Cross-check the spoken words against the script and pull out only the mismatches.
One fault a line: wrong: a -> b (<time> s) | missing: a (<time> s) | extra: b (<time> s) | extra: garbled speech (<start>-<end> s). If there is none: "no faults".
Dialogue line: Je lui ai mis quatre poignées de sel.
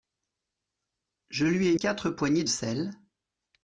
missing: mis (1.8 s)
missing: de (2.4 s)